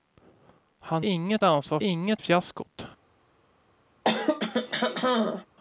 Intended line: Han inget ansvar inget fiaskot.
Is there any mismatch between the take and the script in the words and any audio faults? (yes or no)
yes